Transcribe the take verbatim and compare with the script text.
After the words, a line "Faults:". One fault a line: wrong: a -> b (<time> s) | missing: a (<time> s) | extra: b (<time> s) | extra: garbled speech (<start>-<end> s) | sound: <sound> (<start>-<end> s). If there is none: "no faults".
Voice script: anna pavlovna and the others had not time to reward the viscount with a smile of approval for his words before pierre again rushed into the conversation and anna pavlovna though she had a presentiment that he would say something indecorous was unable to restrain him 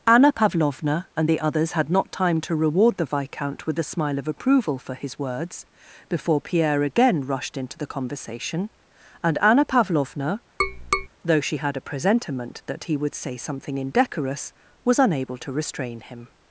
anna pavlovna and the others had not time to reward the viscount with a smile of approval for his words before pierre again rushed into the conversation and anna pavlovna though she had a presentiment that he would say something indecorous was unable to restrain him
Faults:
sound: tap (10.6-11.1 s)